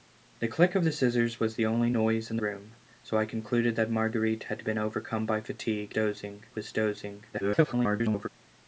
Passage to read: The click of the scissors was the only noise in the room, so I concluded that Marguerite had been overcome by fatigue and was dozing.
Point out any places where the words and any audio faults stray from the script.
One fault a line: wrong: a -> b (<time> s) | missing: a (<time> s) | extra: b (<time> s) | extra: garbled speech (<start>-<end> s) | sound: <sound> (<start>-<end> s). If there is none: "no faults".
missing: the (2.4 s)
wrong: and -> dozing (5.9 s)
extra: garbled speech (7.3-8.3 s)